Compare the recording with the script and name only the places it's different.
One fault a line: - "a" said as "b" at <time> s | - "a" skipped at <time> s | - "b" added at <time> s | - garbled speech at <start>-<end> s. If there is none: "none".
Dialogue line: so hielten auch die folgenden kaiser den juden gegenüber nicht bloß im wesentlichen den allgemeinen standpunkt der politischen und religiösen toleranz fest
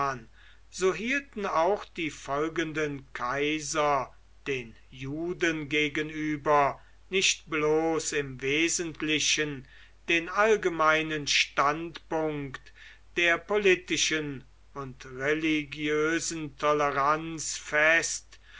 none